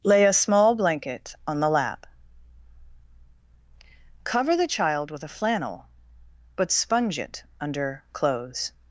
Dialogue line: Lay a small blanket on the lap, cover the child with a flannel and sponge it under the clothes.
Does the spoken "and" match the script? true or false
false